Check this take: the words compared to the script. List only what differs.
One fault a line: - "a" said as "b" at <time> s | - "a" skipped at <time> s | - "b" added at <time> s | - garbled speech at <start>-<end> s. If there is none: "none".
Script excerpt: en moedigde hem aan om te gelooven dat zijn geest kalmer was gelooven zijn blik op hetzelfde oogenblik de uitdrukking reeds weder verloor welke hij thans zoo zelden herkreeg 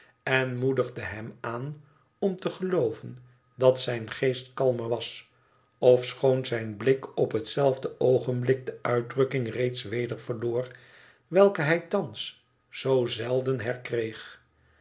- "gelooven" said as "ofschoon" at 5.8 s